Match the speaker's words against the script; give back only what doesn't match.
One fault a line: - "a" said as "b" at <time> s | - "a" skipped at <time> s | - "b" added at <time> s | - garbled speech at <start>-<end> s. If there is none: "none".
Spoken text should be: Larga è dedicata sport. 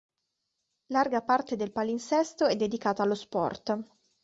- "parte del palinsesto" added at 1.2 s
- "allo" added at 3.0 s